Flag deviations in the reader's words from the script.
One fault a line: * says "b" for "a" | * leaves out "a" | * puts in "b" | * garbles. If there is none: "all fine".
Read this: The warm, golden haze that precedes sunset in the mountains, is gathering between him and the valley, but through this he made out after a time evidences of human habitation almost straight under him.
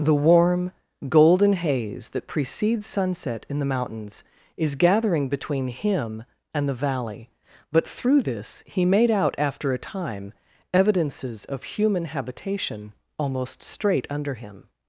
all fine